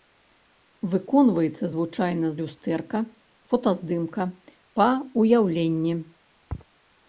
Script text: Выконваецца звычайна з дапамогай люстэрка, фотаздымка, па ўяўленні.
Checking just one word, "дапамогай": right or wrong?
wrong